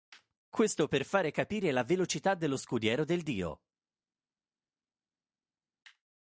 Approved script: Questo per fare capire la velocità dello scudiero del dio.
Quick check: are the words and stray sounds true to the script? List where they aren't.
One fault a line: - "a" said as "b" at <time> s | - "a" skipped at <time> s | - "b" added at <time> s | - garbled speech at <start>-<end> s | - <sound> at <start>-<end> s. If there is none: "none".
none